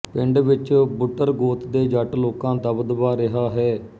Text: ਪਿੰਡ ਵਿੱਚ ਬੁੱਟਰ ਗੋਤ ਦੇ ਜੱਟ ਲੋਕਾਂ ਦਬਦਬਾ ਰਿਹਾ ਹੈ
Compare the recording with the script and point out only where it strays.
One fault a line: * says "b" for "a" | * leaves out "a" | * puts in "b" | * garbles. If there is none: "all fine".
all fine